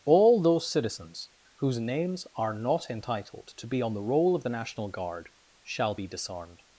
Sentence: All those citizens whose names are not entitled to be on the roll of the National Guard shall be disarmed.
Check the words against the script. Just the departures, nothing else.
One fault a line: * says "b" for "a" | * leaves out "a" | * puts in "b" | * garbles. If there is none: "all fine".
all fine